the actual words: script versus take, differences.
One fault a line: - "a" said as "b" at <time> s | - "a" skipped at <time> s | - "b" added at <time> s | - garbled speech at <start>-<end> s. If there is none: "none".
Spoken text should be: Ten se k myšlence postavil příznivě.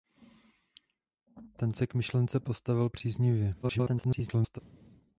- garbled speech at 3.6-4.6 s